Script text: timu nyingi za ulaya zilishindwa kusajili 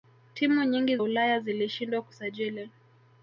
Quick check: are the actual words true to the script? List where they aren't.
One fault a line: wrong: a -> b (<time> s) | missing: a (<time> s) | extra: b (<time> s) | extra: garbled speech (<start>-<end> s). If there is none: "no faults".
missing: za (1.0 s)